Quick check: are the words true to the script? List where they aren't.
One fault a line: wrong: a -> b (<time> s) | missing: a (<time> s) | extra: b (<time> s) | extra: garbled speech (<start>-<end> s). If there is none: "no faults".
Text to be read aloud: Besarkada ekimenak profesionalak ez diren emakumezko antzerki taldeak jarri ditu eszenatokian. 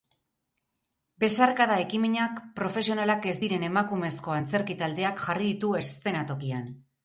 no faults